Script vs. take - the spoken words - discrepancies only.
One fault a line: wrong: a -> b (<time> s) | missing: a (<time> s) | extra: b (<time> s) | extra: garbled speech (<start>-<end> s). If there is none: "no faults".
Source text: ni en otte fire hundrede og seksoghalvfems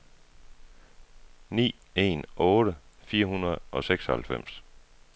no faults